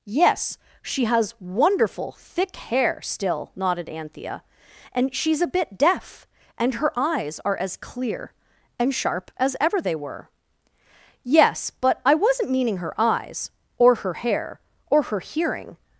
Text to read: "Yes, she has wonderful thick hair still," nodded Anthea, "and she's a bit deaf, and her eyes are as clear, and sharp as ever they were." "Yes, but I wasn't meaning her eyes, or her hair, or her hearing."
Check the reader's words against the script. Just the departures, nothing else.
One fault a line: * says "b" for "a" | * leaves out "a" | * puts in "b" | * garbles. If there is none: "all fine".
all fine